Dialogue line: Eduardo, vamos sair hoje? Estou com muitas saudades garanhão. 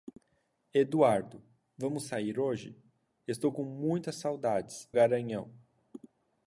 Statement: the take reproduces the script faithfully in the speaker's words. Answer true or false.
true